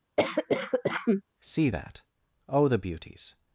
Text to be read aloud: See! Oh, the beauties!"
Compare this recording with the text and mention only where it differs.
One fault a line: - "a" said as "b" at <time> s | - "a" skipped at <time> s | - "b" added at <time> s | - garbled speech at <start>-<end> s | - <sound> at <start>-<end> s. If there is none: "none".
- cough at 0.2-1.2 s
- "that" added at 1.7 s